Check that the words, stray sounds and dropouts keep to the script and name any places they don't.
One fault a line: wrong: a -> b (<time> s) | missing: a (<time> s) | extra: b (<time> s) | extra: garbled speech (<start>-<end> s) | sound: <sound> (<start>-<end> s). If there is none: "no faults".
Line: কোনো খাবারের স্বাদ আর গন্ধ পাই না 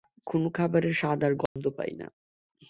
sound: dropout (1.5-1.6 s)